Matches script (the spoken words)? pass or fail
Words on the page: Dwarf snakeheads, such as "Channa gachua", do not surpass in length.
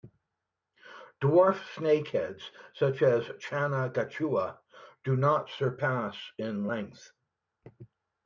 pass